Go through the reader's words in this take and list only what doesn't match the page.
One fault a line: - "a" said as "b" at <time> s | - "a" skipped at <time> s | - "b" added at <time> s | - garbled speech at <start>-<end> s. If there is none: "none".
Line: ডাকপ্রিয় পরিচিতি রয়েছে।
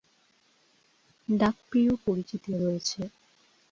none